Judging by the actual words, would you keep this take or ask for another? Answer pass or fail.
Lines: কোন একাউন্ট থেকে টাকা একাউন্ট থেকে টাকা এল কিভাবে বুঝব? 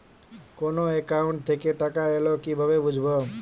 fail